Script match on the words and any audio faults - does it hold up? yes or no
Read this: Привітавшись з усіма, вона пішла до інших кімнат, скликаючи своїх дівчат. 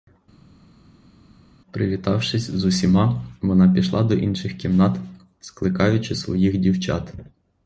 yes